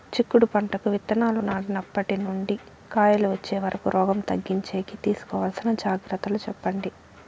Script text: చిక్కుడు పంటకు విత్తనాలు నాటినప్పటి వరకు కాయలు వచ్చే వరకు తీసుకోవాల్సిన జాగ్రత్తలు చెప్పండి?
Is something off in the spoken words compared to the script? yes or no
yes